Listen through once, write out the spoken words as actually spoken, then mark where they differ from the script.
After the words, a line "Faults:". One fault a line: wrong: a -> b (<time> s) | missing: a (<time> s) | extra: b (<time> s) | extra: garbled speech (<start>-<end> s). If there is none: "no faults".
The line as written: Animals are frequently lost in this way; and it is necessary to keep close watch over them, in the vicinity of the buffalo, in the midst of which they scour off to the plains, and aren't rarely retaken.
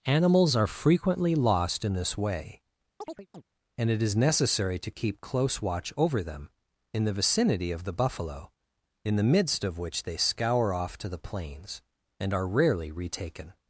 Animals are frequently lost in this way; and it is necessary to keep close watch over them, in the vicinity of the buffalo, in the midst of which they scour off to the plains, and are rarely retaken.
Faults:
wrong: aren't -> are (12.3 s)